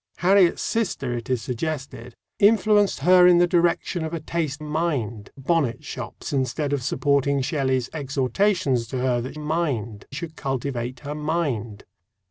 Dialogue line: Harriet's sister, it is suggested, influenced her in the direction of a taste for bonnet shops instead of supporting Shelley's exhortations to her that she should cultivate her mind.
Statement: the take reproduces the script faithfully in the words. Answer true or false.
false